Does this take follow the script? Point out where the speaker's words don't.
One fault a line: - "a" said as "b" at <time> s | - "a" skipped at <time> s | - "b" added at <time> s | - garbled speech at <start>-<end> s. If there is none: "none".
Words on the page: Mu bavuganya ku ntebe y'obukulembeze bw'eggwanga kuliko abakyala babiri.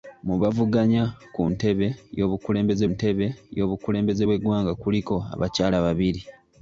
- "ntebe y'obukulembeze" added at 2.9 s